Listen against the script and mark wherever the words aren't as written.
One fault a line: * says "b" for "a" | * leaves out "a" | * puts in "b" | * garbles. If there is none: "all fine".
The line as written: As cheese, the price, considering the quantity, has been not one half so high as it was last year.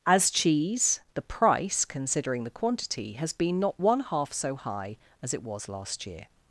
all fine